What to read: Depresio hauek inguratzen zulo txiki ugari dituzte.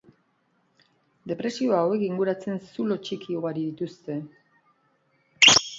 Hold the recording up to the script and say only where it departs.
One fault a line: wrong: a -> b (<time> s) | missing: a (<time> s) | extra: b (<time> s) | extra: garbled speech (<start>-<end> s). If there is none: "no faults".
no faults